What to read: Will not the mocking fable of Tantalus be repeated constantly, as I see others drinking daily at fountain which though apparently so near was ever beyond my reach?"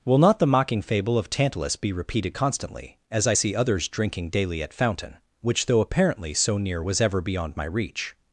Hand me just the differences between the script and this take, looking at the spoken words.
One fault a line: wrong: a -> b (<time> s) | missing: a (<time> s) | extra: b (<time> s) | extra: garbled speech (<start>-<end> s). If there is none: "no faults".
no faults